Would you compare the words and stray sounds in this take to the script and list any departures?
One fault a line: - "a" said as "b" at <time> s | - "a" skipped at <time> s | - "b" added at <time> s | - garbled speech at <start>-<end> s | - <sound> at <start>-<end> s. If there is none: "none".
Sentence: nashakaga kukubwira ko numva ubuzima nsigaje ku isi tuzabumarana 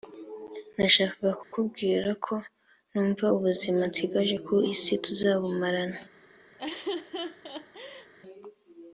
- dropout at 1.4-1.5 s
- laugh at 6.6-8.1 s